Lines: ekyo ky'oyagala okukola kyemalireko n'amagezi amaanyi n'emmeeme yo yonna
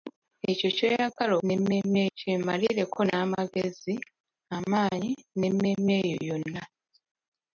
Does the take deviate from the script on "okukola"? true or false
true